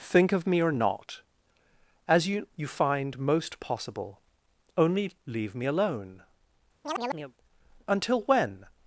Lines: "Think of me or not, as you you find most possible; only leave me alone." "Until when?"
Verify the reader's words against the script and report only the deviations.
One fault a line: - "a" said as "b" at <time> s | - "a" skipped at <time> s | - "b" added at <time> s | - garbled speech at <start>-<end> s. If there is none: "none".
none